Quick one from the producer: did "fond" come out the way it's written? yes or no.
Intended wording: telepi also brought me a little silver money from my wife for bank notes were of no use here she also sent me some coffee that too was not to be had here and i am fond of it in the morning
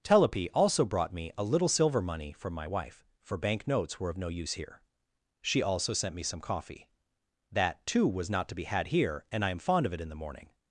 yes